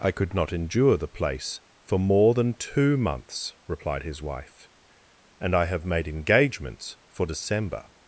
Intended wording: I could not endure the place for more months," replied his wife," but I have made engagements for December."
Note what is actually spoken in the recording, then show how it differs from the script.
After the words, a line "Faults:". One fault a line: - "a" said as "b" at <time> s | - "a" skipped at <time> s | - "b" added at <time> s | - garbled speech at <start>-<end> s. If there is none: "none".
I could not endure the place for more than two months," replied his wife," and I have made engagements for December."
Faults:
- "than two" added at 2.3 s
- "but" said as "and" at 5.4 s